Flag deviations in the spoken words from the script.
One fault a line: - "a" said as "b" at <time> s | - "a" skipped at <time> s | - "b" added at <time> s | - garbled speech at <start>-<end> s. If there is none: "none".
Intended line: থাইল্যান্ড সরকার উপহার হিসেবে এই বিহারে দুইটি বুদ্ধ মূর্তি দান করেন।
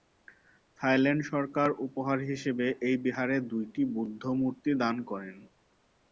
none